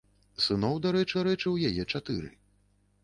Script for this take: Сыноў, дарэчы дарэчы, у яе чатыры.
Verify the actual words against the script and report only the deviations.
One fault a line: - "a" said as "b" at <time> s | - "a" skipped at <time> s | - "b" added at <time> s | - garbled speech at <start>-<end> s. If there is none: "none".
none